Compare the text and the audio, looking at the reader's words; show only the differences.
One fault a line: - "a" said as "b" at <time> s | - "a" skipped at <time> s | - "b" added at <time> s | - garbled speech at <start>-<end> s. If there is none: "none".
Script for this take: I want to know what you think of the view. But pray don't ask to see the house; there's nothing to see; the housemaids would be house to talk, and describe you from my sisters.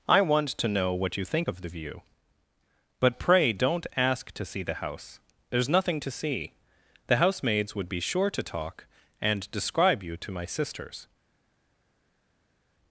- "house" said as "sure" at 8.0 s
- "from" said as "to" at 10.2 s